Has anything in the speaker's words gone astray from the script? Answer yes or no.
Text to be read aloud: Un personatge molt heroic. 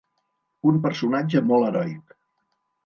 no